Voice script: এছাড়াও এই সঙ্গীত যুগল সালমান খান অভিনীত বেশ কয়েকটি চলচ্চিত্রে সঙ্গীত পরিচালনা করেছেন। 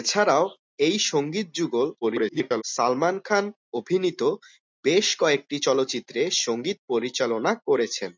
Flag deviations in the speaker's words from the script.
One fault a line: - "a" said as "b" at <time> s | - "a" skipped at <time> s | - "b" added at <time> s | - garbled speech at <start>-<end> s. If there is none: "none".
- garbled speech at 2.0-2.6 s